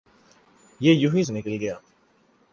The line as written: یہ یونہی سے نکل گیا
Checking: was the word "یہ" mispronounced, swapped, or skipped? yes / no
no